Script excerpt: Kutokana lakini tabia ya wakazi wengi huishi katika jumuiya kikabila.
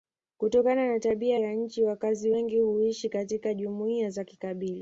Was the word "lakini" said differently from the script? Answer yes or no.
yes